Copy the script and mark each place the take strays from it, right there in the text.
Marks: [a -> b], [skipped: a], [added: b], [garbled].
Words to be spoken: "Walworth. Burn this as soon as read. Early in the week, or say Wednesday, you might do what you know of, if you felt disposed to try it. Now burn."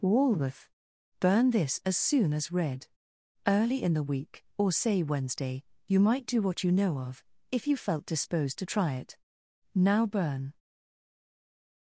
"Walworth. Burn this as soon as read. Early in the week, or say Wednesday, you might do what you know of, if you felt disposed to try it. Now burn."